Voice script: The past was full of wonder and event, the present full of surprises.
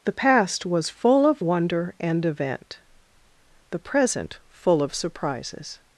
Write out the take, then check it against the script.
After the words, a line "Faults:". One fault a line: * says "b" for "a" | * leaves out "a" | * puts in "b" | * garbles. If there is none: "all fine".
The past was full of wonder and event, the present full of surprises.
Faults:
all fine